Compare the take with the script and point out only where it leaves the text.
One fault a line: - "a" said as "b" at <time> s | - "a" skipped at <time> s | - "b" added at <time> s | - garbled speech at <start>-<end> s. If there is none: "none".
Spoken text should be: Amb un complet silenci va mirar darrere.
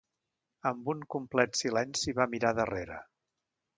none